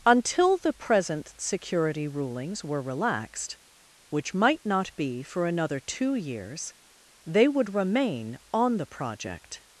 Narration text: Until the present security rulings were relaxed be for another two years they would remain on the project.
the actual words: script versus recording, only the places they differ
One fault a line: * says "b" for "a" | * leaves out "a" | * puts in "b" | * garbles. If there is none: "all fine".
* puts in "which might not"